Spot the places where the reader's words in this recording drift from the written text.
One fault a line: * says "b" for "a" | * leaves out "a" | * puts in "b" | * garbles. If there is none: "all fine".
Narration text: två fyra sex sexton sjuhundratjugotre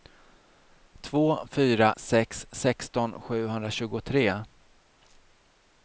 all fine